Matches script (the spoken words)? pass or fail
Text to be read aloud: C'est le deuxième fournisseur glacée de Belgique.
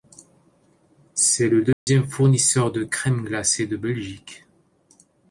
fail